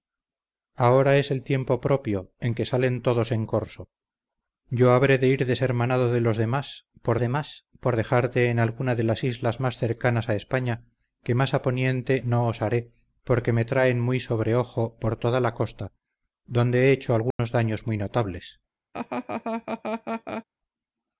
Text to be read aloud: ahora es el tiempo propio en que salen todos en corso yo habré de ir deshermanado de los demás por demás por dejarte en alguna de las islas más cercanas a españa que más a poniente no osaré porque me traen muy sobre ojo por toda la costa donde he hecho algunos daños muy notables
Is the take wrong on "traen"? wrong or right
right